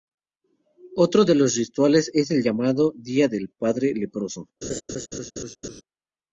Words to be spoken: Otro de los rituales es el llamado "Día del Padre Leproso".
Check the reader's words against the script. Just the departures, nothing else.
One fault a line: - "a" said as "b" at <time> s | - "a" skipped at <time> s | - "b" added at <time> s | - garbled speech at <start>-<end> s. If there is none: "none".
none